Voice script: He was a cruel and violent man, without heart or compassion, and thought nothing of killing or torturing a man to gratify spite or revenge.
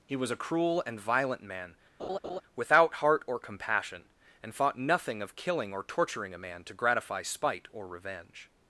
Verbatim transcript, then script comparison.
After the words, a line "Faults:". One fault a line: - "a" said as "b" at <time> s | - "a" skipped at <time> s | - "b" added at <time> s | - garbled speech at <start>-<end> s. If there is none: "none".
He was a cruel and violent man, without heart or compassion, and thought nothing of killing or torturing a man to gratify spite or revenge.
Faults:
none